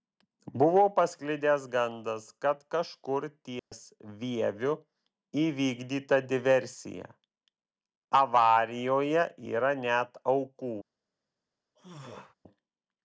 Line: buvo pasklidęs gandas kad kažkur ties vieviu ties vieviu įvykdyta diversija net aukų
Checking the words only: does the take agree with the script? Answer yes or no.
no